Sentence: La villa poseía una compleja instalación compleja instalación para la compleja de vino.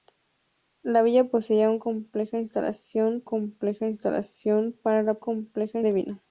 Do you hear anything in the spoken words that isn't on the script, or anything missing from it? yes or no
no